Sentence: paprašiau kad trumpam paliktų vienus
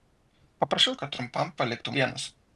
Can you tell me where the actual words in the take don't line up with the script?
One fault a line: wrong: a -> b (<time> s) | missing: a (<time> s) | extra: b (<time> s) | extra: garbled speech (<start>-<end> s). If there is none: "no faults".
no faults